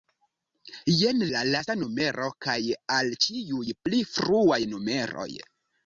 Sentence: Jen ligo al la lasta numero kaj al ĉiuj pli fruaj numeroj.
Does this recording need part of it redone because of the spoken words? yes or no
yes